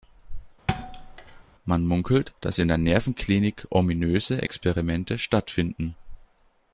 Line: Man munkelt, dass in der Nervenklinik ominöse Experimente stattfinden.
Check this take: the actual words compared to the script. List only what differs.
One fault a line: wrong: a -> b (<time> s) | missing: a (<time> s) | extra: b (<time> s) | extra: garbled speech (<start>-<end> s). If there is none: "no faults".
no faults